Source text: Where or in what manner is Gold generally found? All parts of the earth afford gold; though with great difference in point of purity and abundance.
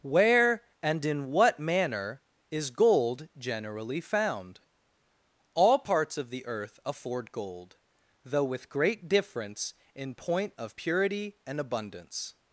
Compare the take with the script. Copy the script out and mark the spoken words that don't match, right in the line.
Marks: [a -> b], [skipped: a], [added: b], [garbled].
Where [or -> and] in what manner is Gold generally found? All parts of the earth afford gold; though with great difference in point of purity and abundance.